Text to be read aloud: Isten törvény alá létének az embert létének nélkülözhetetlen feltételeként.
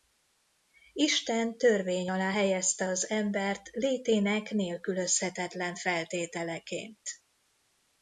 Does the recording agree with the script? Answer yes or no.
no